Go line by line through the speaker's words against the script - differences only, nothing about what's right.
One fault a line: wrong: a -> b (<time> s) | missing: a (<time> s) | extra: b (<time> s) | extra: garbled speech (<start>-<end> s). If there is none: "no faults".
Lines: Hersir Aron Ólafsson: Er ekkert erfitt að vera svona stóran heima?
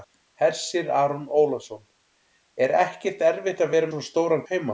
no faults